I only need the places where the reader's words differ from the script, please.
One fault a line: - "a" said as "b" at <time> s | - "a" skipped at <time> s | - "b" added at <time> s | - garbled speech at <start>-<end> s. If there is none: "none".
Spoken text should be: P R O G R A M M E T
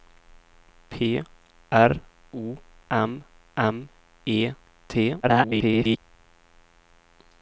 - "G R A" skipped at 2.6 s
- garbled speech at 5.2-6.0 s